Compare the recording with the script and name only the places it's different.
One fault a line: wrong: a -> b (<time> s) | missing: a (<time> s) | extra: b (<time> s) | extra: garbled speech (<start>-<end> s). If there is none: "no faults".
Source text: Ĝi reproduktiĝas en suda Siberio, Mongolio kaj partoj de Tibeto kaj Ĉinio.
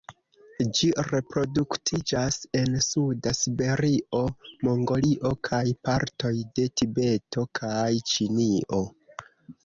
no faults